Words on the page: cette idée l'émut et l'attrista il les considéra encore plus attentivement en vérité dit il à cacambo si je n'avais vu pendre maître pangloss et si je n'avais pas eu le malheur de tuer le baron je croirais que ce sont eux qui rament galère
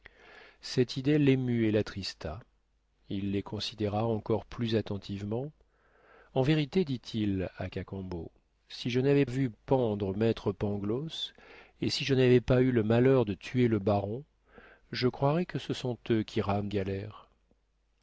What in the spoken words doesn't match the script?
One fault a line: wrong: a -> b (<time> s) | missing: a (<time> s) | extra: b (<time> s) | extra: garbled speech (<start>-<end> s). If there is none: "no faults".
no faults